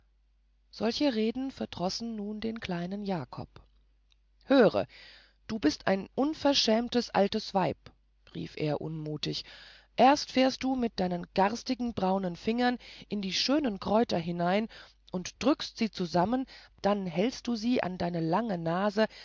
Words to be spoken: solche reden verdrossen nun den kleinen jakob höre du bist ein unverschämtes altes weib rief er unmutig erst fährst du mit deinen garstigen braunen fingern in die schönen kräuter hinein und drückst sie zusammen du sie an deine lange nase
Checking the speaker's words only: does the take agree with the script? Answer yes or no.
no